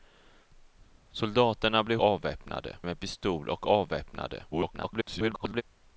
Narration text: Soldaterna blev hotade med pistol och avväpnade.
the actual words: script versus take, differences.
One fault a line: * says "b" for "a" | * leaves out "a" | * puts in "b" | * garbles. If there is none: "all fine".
* says "avväpnade" for "hotade"
* garbles